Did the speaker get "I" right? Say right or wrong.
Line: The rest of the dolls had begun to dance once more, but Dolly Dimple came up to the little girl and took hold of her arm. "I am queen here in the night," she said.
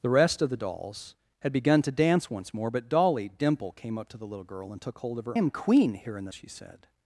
wrong